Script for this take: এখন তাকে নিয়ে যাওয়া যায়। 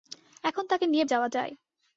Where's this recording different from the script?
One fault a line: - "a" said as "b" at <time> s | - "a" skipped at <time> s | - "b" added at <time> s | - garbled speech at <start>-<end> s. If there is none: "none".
none